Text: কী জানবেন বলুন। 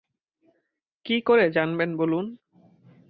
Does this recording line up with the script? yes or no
no